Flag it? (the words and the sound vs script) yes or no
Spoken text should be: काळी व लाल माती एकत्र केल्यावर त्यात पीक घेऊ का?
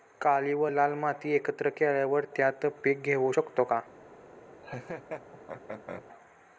yes